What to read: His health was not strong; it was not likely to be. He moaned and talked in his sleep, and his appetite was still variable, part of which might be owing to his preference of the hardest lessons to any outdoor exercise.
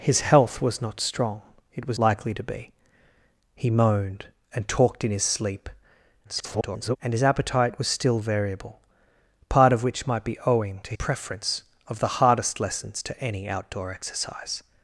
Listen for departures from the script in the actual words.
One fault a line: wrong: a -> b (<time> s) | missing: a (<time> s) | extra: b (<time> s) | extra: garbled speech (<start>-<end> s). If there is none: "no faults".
missing: not (2.0 s)
extra: garbled speech (6.2-7.0 s)
missing: his (11.0 s)